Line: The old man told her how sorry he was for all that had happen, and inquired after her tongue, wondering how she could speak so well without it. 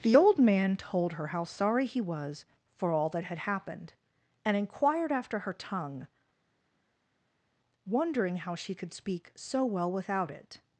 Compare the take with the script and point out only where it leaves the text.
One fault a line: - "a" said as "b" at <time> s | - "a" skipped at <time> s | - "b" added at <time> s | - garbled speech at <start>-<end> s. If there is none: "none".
- "happen" said as "happened" at 3.4 s